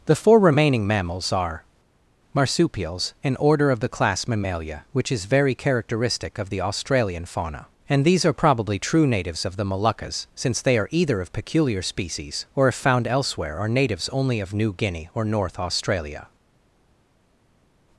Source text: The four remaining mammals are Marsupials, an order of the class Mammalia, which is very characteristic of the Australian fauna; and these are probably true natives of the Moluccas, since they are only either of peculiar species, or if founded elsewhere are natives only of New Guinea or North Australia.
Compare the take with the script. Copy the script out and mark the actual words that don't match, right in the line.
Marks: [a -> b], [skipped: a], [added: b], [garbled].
The four remaining mammals are Marsupials, an order of the class Mammalia, which is very characteristic of the Australian fauna; and these are probably true natives of the Moluccas, since they are [skipped: only] either of peculiar species, or if [founded -> found] elsewhere are natives only of New Guinea or North Australia.